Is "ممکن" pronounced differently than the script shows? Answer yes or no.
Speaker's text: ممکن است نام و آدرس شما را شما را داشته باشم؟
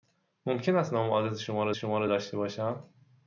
no